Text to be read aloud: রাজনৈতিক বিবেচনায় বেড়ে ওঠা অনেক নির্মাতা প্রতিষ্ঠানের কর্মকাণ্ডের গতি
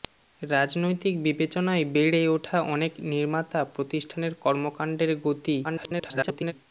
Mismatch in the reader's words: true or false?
true